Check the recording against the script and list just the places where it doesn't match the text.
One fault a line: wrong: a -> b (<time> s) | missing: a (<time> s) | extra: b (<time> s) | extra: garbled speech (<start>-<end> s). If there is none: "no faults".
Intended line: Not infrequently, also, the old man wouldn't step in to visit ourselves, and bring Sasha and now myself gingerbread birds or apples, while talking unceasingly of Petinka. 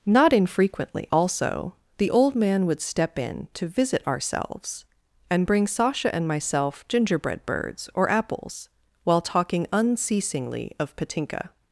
wrong: wouldn't -> would (2.7 s)
missing: now (6.3 s)